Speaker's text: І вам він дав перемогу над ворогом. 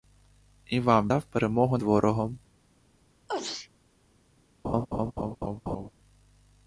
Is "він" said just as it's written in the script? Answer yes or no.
no